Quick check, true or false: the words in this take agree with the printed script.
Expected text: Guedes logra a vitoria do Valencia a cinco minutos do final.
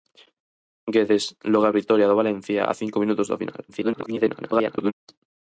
false